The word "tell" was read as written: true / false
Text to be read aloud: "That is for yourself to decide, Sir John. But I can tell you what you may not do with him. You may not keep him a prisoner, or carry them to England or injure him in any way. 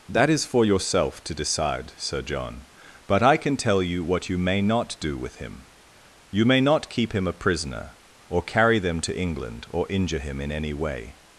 true